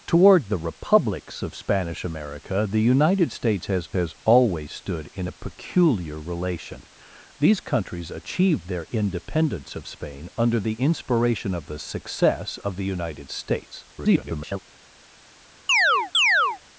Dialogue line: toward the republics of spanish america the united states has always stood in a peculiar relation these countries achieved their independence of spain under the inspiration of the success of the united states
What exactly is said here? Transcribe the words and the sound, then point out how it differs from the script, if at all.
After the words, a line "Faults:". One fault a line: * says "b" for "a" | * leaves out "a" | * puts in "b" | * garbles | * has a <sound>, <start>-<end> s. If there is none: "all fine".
toward the republics of spanish america the united states has has always stood in a peculiar relation these countries achieved their independence of spain under the inspiration of the success of the united states [garbled]
Faults:
* puts in "has"
* garbles
* has a chirp, 15.7-16.6 s